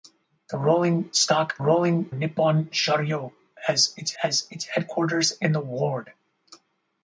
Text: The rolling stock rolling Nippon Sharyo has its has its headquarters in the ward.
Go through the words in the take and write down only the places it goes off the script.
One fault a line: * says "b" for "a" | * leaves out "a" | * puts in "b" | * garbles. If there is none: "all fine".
all fine